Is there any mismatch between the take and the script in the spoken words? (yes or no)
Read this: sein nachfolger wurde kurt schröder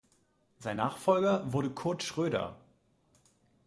no